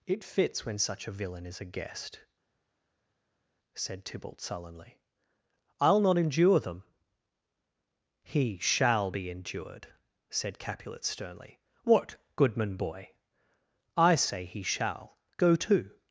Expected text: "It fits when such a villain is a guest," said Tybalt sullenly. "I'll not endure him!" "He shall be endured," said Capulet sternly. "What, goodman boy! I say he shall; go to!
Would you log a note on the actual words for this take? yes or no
yes